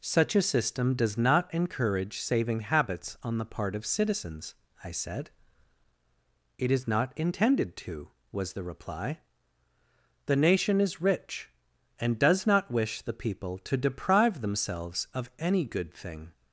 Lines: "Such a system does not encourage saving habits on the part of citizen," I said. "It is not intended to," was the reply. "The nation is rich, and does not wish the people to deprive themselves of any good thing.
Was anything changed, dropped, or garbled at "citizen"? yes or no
yes